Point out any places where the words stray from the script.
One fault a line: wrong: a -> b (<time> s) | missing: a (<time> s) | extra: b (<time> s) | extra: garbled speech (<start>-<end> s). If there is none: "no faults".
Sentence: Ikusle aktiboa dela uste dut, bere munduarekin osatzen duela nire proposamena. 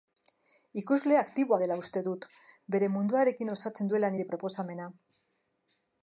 no faults